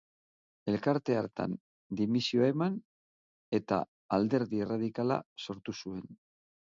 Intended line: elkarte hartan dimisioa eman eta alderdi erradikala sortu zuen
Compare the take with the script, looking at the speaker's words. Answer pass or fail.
pass